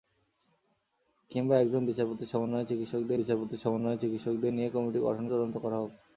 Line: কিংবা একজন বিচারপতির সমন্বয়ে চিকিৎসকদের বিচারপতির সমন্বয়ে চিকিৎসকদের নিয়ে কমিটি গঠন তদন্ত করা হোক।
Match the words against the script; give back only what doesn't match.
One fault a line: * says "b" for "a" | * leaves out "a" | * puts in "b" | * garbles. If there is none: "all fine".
all fine